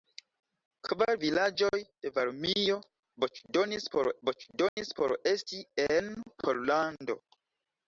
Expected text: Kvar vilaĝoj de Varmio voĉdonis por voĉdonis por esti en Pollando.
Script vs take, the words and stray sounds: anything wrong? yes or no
yes